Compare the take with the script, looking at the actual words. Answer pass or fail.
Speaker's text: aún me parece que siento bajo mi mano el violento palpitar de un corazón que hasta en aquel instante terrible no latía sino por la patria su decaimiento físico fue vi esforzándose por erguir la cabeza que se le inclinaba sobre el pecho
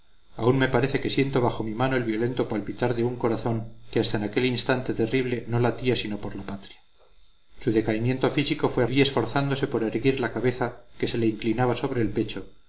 pass